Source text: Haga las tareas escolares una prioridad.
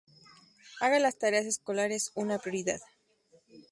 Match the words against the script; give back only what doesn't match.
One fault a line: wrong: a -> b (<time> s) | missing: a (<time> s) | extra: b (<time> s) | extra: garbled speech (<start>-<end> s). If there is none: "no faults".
no faults